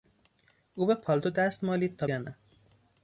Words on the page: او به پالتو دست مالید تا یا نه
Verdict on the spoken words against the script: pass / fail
pass